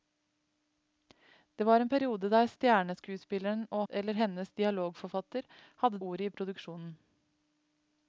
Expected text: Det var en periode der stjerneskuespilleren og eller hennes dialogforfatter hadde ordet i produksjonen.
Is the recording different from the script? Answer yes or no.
no